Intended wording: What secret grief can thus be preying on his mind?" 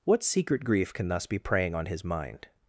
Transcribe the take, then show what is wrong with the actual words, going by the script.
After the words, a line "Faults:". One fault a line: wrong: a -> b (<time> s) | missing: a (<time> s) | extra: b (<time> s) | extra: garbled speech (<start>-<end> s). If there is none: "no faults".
What secret grief can thus be preying on his mind?"
Faults:
no faults